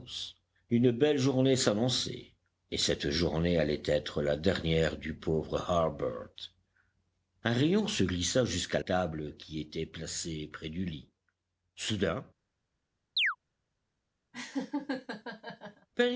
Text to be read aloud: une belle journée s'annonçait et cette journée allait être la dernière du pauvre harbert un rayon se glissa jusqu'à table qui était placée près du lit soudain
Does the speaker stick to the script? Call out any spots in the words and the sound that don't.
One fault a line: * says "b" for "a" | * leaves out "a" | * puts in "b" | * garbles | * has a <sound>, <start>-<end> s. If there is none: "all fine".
* has a chirp, 13.2-13.4 s
* has a laugh, 14.3-15.9 s